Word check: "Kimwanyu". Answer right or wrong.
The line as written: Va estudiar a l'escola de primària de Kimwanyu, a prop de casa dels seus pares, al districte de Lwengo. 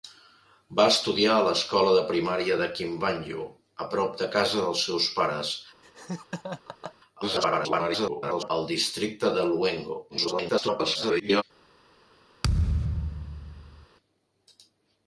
right